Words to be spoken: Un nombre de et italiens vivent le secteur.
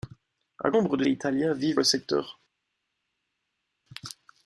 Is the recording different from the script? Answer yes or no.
no